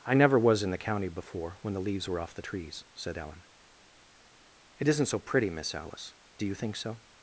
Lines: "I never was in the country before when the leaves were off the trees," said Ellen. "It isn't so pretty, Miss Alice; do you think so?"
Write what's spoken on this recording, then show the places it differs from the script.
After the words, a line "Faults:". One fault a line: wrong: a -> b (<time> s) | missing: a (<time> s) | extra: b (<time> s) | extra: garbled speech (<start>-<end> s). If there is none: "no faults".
"I never was in the county before when the leaves were off the trees," said Ellen. "It isn't so pretty, Miss Alice; do you think so?"
Faults:
wrong: country -> county (0.8 s)